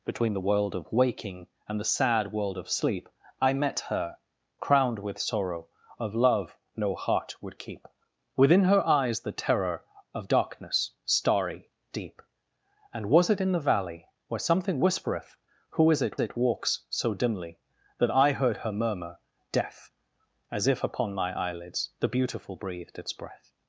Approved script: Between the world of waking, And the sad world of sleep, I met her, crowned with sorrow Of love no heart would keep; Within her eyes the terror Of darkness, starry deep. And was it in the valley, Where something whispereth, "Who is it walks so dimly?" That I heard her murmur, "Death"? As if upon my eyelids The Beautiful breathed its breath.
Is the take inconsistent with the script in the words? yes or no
yes